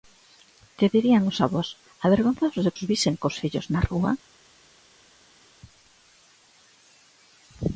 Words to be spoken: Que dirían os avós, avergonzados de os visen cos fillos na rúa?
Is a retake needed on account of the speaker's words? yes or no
no